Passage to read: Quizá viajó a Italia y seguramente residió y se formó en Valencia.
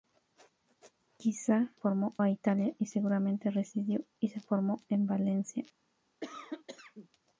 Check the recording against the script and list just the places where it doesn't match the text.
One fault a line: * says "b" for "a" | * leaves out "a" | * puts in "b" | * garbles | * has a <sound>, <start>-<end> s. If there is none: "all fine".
* says "formó" for "viajó"
* has a cough, 6.2-7.1 s